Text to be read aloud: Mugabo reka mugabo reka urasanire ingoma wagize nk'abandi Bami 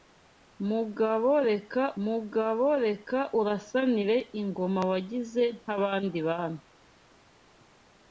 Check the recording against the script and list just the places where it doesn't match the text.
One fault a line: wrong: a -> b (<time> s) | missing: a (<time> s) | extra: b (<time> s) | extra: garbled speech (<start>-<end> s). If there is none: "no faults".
no faults